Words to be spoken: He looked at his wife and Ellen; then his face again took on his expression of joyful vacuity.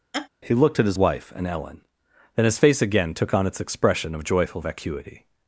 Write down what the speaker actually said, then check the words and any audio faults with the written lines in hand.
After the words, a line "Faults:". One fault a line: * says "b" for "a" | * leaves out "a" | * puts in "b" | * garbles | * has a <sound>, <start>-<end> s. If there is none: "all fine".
He looked at his wife and Ellen; then his face again took on its expression of joyful vacuity.
Faults:
* has a laugh, 0.1-0.3 s
* says "its" for "his"